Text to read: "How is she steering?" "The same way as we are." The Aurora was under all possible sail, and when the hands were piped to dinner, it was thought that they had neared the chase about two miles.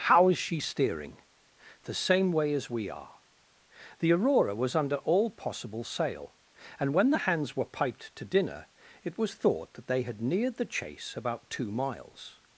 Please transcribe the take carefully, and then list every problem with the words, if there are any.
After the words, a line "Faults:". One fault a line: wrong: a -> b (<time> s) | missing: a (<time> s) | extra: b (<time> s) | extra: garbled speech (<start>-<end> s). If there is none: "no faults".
"How is she steering?" "The same way as we are." The Aurora was under all possible sail, and when the hands were piped to dinner, it was thought that they had neared the chase about two miles.
Faults:
no faults